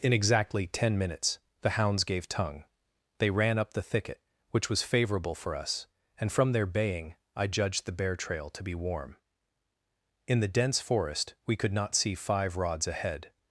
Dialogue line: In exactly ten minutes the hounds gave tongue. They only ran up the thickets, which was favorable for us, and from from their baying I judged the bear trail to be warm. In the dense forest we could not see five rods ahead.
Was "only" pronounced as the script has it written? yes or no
no